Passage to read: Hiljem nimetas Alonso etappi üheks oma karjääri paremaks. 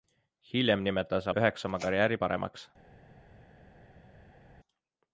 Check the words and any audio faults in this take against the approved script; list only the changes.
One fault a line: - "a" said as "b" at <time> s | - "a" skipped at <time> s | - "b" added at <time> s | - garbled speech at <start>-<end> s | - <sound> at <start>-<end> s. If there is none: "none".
- "Alonso etappi" skipped at 1.3 s